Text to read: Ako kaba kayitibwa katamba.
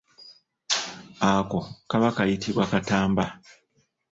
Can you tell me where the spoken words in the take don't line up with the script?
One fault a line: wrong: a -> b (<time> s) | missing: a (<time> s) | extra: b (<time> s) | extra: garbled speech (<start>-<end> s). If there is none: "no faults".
no faults